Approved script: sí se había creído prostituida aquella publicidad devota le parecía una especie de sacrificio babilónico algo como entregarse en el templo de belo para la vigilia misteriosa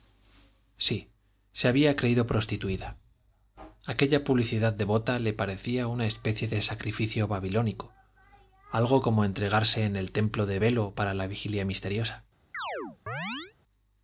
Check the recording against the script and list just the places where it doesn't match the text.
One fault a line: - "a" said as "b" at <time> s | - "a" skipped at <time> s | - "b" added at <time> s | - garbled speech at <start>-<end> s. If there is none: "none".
none